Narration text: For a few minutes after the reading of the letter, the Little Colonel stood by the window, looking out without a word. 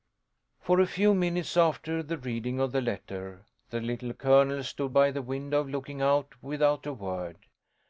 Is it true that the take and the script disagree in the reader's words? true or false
false